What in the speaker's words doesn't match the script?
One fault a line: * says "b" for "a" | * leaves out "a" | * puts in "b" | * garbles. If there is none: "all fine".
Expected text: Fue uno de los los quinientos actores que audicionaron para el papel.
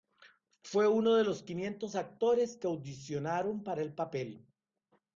* leaves out "los"